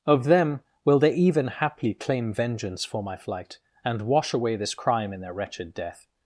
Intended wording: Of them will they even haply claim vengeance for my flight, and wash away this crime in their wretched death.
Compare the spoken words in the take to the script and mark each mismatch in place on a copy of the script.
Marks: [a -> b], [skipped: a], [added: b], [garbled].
Of them will they even haply claim vengeance for my flight, and wash away this crime in their wretched death.